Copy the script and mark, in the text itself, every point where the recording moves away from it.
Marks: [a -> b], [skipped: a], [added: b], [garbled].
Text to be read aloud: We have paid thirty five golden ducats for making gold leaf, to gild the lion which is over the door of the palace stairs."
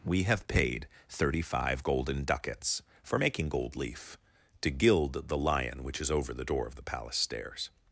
We have paid thirty five golden ducats for making gold leaf, to gild the lion which is over the door of the palace stairs."